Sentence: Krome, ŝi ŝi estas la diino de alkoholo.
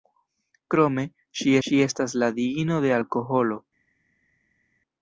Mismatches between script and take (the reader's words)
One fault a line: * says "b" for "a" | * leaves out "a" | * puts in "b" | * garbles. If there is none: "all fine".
all fine